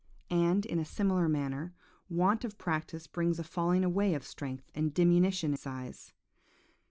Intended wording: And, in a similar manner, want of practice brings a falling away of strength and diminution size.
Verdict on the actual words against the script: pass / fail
pass